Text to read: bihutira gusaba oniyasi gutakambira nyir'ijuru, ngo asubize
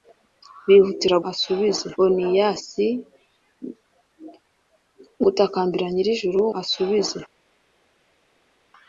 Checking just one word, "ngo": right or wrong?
wrong